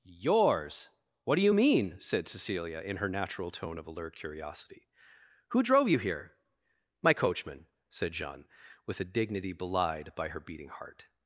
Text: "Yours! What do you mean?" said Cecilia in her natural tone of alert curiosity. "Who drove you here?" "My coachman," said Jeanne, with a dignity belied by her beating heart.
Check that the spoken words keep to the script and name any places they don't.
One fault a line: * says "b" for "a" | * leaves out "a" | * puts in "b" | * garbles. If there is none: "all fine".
all fine